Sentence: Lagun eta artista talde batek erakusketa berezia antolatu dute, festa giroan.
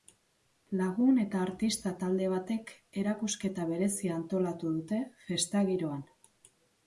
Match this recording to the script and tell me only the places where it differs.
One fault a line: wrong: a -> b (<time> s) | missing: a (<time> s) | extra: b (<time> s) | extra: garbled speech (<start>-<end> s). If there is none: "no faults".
no faults